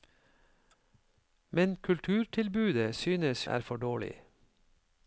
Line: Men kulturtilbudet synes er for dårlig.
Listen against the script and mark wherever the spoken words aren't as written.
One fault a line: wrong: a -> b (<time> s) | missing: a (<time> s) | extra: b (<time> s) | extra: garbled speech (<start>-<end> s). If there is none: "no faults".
no faults